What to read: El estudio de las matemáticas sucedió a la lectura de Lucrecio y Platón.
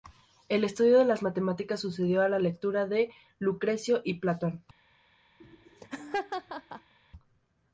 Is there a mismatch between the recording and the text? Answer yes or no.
no